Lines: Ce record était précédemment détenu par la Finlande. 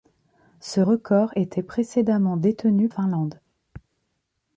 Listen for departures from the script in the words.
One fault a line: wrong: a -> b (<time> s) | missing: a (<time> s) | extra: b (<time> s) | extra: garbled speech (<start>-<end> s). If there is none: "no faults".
missing: par la (2.9 s)